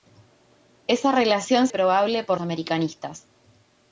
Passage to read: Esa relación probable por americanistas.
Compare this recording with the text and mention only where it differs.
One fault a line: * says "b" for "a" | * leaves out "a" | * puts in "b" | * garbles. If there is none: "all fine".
all fine